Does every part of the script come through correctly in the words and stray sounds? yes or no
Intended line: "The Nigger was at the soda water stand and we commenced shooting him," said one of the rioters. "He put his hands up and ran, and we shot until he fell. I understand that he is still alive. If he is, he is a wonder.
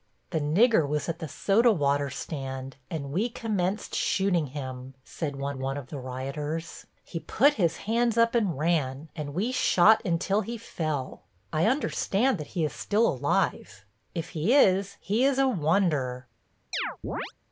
no